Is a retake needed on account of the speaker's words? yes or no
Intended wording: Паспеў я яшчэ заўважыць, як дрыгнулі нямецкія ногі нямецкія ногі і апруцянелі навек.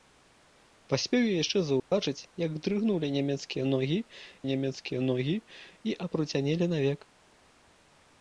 no